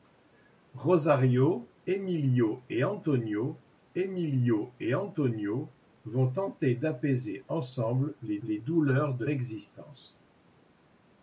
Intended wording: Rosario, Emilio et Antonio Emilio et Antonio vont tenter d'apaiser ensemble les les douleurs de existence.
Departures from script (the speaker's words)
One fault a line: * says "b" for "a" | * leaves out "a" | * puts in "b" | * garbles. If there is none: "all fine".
all fine